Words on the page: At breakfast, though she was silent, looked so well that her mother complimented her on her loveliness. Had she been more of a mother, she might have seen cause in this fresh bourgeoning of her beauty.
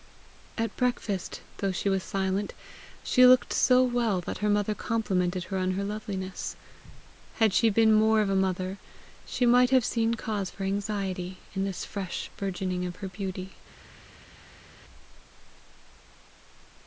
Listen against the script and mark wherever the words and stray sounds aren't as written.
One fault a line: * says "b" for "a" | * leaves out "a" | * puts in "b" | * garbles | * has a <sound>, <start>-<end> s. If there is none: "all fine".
* puts in "she"
* puts in "for anxiety"